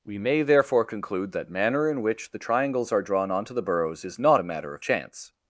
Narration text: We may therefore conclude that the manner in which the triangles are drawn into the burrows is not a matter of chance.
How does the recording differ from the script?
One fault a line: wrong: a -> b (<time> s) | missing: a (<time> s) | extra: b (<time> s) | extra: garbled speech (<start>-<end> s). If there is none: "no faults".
missing: the (1.5 s)
wrong: into -> onto (3.3 s)